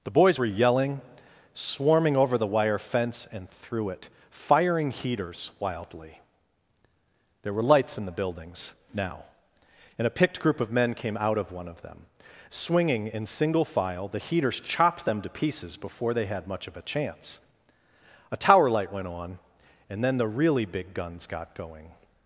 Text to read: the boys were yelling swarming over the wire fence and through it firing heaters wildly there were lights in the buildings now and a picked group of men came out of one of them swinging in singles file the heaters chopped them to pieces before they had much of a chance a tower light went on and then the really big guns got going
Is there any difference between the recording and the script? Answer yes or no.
yes